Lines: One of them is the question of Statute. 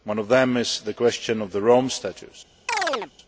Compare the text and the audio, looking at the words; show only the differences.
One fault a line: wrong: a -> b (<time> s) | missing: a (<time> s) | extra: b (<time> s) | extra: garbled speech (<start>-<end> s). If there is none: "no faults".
extra: the Rome (1.5 s)